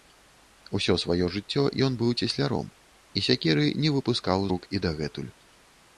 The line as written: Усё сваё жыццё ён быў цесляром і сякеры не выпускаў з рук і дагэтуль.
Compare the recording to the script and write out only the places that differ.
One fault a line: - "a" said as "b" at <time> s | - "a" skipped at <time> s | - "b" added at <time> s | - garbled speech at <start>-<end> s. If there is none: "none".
- "з" skipped at 4.5 s